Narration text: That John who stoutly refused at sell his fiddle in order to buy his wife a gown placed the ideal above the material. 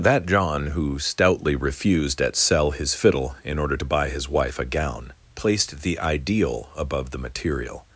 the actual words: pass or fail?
pass